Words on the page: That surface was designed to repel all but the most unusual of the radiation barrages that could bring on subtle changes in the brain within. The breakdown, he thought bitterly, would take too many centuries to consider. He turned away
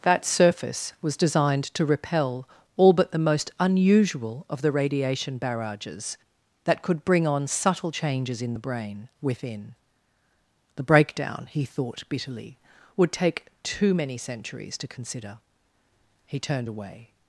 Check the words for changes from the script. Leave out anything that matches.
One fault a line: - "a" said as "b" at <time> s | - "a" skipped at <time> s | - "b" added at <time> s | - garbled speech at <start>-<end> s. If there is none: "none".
none